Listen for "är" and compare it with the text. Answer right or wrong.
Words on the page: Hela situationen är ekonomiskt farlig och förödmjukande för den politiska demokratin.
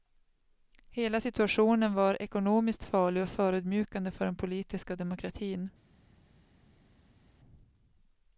wrong